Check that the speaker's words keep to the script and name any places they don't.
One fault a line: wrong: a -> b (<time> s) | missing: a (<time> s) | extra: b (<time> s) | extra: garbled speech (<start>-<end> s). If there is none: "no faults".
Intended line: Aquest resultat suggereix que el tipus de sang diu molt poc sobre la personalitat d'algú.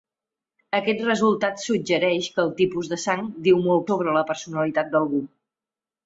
missing: poc (3.9 s)